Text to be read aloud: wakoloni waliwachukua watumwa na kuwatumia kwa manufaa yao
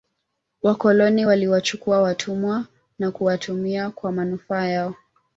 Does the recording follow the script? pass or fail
pass